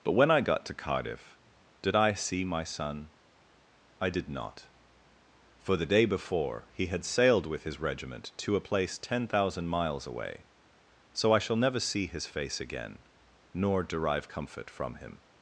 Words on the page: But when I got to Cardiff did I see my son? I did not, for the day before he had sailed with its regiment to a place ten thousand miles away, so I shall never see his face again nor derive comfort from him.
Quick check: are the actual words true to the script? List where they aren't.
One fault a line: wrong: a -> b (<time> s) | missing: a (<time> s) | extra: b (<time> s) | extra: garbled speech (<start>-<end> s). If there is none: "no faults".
wrong: its -> his (7.6 s)